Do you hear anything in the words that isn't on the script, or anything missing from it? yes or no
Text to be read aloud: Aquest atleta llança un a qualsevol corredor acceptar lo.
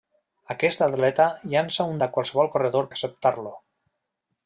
no